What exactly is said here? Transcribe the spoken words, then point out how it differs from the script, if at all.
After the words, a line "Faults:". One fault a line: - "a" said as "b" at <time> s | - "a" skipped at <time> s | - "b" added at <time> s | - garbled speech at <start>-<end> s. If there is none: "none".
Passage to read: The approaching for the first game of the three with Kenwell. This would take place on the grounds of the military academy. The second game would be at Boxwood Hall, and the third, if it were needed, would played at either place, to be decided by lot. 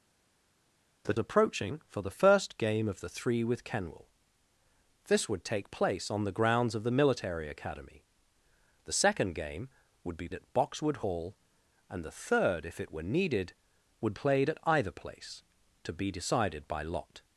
The approaching for the first game of the three with Kenwell. This would take place on the grounds of the military academy. The second game would be at Boxwood Hall, and the third, if it were needed, would played at either place, to be decided by lot.
Faults:
none